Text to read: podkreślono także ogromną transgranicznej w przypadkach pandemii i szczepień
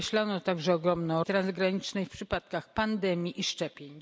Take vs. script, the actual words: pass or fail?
pass